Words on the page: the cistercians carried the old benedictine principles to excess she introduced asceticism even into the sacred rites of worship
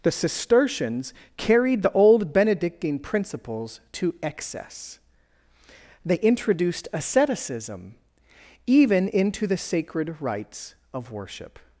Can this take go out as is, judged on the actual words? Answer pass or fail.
fail